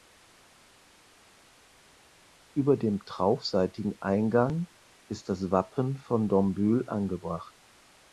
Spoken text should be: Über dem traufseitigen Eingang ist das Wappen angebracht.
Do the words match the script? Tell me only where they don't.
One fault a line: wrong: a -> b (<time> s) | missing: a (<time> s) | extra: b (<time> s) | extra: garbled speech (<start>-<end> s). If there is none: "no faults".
extra: von Dombühl (6.0 s)